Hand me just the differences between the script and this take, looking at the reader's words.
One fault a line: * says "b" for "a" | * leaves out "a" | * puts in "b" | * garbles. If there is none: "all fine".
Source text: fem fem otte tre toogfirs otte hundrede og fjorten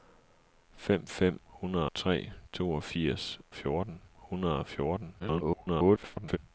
* says "hundrede" for "otte"
* says "fjorten" for "otte"
* garbles